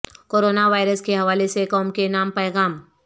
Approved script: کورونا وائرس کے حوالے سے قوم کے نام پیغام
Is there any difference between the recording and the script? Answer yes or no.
no